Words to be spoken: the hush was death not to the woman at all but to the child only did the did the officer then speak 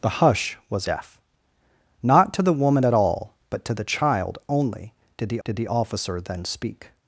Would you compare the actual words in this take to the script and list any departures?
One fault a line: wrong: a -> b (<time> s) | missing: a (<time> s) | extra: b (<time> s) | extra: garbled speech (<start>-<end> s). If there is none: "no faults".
no faults